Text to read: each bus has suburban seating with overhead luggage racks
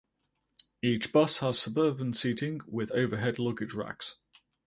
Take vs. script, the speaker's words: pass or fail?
pass